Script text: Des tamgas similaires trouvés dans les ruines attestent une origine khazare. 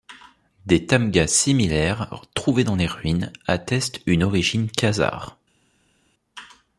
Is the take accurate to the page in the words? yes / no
yes